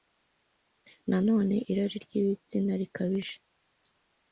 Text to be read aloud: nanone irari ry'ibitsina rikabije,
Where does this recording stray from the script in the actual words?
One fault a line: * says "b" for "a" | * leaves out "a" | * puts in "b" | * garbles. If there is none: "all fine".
all fine